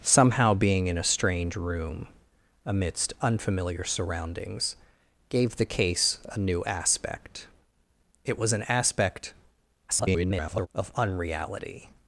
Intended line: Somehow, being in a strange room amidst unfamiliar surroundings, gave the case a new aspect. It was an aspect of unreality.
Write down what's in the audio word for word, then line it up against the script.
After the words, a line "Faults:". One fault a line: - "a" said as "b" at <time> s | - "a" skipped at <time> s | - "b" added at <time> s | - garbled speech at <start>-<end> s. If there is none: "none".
Somehow, being in a strange room amidst unfamiliar surroundings, gave the case a new aspect. It was an aspect [garbled] of unreality.
Faults:
- garbled speech at 9.9-10.7 s